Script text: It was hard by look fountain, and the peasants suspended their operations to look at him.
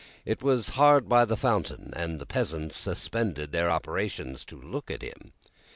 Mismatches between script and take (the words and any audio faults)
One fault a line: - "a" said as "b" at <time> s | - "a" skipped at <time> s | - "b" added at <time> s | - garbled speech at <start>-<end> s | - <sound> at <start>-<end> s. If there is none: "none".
- "look" said as "the" at 1.2 s